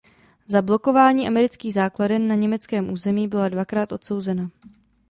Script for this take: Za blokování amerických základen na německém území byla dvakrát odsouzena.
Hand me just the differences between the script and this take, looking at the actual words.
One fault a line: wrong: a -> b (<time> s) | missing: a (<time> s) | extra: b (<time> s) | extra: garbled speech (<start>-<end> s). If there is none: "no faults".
no faults